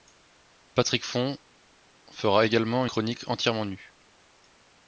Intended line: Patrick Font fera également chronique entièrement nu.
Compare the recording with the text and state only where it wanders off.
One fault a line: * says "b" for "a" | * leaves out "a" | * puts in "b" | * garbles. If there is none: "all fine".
all fine